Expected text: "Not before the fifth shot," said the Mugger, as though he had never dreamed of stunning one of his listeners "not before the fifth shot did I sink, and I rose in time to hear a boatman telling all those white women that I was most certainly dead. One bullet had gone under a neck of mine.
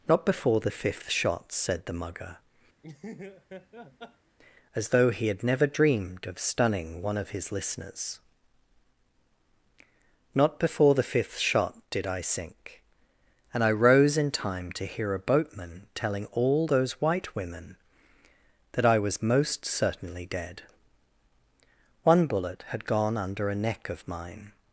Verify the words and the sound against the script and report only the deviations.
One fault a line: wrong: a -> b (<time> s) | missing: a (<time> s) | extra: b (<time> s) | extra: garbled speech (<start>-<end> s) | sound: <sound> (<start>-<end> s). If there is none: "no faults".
sound: laugh (2.8-4.4 s)